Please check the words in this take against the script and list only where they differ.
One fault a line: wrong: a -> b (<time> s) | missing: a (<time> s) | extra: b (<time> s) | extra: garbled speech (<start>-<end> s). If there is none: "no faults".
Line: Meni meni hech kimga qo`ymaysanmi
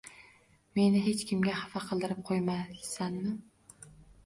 missing: meni (1.0 s)
extra: xafa qildirib (1.6 s)